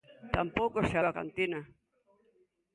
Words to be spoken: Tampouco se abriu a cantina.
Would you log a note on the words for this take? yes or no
yes